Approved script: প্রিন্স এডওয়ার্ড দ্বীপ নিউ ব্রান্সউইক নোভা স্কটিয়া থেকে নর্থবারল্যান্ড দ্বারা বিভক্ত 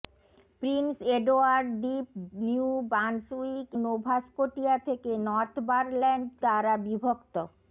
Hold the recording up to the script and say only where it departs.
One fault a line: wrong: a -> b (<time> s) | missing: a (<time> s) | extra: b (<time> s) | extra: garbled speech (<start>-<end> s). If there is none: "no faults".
no faults